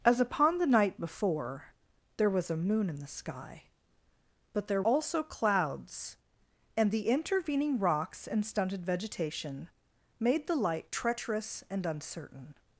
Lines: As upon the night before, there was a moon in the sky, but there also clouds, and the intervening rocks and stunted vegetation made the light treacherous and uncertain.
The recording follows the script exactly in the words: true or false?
true